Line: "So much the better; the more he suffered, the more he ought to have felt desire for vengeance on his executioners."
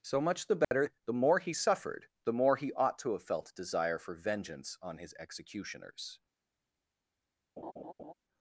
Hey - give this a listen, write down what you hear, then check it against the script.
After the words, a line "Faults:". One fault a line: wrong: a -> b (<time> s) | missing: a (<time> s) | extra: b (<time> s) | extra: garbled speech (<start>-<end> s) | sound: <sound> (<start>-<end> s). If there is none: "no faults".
"So much the better; the more he suffered, the more he ought to have felt desire for vengeance on his executioners."
Faults:
sound: dropout (0.6-0.7 s)
sound: laugh (7.6-8.1 s)